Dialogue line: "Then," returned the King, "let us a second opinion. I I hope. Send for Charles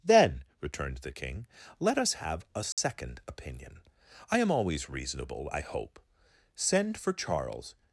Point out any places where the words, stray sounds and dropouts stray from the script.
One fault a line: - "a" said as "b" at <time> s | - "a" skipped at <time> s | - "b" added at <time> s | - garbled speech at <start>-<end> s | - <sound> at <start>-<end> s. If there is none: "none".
- "have" added at 2.1 s
- dropout at 2.7-2.8 s
- "am always reasonable" added at 4.4 s